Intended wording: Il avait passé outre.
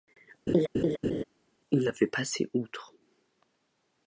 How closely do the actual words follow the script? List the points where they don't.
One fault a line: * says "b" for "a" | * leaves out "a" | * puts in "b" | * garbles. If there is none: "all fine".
all fine